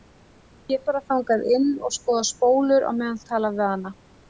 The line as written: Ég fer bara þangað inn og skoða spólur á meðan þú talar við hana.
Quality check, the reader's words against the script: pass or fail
fail